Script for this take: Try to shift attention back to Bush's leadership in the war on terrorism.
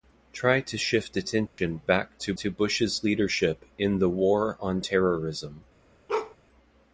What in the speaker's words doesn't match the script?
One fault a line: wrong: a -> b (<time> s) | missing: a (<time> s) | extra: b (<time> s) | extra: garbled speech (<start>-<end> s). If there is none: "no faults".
extra: to (2.4 s)